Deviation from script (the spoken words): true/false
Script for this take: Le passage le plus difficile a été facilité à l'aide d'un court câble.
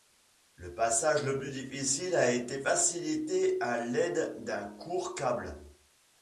false